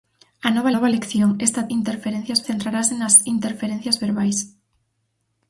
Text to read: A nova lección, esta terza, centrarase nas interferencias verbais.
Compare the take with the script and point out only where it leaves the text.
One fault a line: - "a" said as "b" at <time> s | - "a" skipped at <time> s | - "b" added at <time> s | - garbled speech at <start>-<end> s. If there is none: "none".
- "nova" added at 0.7 s
- "terza" said as "interferencias" at 1.8 s